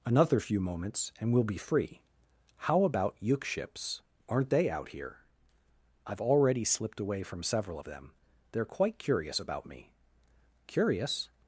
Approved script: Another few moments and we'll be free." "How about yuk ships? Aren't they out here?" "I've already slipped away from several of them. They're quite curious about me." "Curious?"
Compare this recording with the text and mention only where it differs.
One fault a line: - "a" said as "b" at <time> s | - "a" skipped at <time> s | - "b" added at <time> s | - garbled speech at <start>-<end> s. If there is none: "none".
none